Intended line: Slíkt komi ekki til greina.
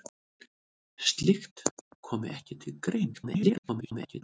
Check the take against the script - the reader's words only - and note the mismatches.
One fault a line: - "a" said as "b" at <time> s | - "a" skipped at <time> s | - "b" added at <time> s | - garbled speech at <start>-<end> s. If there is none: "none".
- garbled speech at 3.1-4.2 s